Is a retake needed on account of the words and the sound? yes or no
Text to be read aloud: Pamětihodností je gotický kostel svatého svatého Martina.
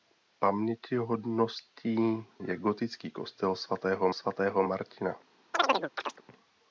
yes